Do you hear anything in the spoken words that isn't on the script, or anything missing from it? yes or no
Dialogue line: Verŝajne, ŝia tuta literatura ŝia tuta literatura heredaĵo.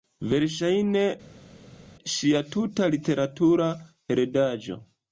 yes